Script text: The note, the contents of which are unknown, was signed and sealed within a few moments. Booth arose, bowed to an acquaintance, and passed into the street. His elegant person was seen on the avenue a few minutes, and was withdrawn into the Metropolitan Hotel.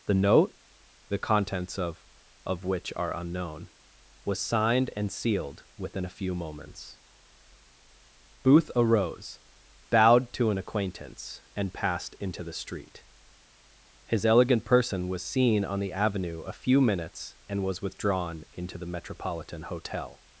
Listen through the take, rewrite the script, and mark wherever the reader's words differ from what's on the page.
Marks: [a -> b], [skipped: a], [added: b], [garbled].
The note, the contents of [added: of] which are unknown, was signed and sealed within a few moments. Booth arose, bowed to an acquaintance, and passed into the street. His elegant person was seen on the avenue a few minutes, and was withdrawn into the Metropolitan Hotel.